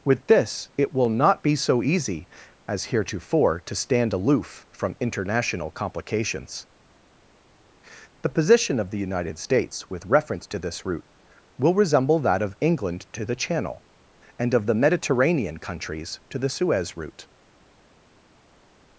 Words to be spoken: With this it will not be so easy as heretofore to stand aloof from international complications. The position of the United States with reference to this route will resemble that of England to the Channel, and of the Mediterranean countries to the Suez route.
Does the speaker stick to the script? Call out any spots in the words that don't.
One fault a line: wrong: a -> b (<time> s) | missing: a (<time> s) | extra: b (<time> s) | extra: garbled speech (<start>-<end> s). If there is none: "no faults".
no faults